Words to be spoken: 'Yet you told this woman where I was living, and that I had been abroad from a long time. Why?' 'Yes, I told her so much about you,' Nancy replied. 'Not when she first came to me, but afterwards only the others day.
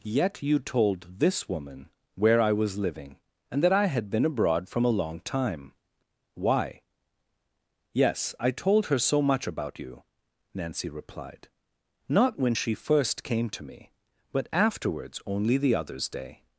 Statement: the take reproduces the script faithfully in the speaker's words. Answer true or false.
true